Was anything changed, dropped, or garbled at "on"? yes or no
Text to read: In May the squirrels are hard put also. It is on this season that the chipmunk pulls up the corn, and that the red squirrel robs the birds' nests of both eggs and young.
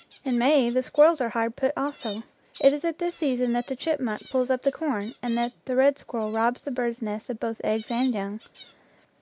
yes